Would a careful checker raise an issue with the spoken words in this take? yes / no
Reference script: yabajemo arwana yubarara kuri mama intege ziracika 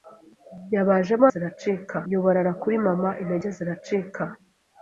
yes